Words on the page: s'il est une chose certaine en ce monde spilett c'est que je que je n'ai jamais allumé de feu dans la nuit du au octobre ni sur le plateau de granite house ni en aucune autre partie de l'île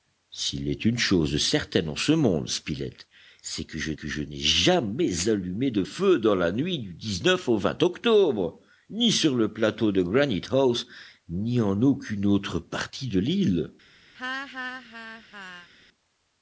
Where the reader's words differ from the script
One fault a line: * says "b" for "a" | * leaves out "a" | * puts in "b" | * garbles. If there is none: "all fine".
all fine